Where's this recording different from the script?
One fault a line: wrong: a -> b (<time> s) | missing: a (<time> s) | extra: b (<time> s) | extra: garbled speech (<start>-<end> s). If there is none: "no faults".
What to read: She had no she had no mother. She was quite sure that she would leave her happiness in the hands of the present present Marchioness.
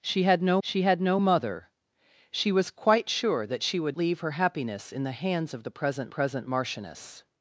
no faults